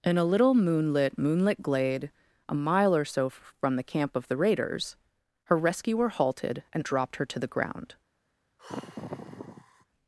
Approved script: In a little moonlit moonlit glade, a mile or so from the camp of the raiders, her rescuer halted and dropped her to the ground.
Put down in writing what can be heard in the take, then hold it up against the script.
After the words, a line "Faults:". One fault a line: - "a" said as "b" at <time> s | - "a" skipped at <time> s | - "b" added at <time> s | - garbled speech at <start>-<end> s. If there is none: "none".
In a little moonlit moonlit glade, a mile or so from the camp of the raiders, her rescuer halted and dropped her to the ground.
Faults:
none